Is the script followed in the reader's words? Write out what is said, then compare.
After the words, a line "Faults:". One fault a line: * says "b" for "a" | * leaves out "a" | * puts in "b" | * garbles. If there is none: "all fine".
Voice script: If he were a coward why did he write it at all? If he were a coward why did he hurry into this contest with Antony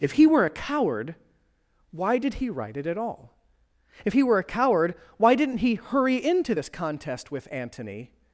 If he were a coward why did he write it at all? If he were a coward why didn't he hurry into this contest with Antony
Faults:
* says "didn't" for "did"